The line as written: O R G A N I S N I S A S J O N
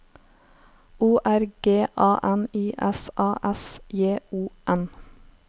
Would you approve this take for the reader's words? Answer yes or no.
no